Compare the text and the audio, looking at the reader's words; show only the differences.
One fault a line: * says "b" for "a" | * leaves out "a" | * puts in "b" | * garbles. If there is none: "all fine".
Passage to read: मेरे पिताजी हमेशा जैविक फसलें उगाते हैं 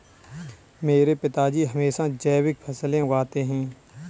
all fine